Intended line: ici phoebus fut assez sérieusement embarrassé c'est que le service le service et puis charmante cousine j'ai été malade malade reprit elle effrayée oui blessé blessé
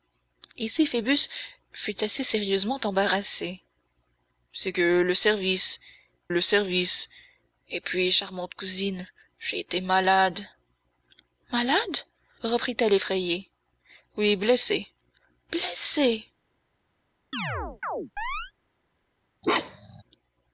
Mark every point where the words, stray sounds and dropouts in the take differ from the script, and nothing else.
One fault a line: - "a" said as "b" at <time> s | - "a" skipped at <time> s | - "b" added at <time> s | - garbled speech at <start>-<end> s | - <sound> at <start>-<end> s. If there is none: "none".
- chirp at 17.3-18.5 s
- bark at 19.4-20.0 s